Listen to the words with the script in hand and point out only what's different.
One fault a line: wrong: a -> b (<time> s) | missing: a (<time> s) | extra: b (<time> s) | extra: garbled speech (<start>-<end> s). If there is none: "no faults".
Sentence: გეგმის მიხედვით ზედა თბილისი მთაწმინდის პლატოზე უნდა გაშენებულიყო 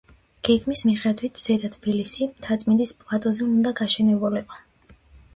no faults